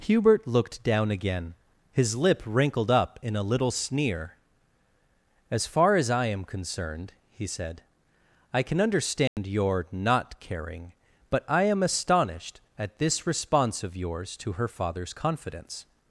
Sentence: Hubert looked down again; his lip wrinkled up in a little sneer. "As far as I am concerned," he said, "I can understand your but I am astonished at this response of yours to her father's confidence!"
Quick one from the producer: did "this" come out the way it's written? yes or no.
yes